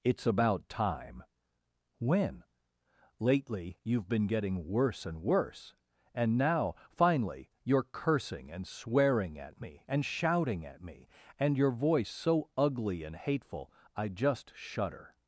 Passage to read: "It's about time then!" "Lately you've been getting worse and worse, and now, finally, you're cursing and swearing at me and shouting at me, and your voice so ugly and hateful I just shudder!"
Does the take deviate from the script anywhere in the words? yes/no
yes